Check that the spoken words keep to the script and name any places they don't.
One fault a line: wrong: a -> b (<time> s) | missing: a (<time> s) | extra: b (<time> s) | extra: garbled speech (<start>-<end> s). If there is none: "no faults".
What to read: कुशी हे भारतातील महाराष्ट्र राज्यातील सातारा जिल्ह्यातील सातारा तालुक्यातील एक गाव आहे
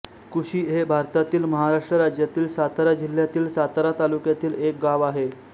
no faults